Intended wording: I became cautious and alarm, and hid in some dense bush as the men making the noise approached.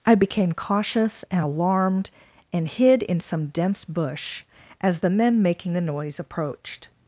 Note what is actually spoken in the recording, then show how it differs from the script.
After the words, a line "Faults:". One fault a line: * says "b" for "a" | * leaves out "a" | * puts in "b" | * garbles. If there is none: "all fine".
I became cautious and alarmed, and hid in some dense bush as the men making the noise approached.
Faults:
* says "alarmed" for "alarm"